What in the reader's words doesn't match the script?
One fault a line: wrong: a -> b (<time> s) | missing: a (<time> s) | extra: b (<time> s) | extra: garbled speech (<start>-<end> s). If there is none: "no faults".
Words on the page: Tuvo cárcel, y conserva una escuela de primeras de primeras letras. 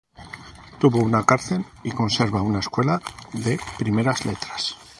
extra: una (1.0 s)
missing: de primeras (4.2 s)